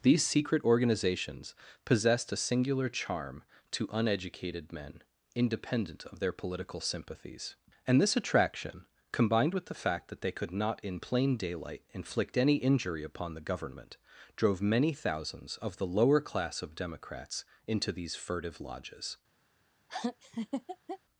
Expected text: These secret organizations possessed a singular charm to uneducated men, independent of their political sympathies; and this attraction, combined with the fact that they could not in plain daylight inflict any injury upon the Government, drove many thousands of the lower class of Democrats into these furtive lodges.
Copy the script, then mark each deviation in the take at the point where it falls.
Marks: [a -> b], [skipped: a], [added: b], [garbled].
These secret organizations possessed a singular charm to uneducated men, independent of their political sympathies; and this attraction, combined with the fact that they could not in plain daylight inflict any injury upon the Government, drove many thousands of the lower class of Democrats into these furtive lodges.